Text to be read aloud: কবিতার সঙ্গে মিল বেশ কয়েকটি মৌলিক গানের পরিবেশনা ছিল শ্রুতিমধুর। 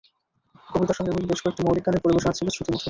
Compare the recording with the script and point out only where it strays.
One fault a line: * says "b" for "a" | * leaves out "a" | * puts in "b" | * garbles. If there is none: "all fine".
all fine